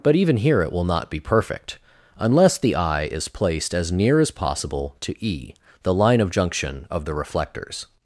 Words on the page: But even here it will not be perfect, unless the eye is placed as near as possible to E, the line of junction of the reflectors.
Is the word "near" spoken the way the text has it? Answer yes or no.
yes